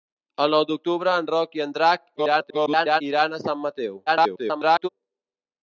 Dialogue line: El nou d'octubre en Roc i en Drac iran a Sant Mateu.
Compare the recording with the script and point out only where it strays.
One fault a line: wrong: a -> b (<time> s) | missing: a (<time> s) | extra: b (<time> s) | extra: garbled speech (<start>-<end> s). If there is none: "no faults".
extra: garbled speech (2.2-3.0 s)
extra: garbled speech (4.1-4.9 s)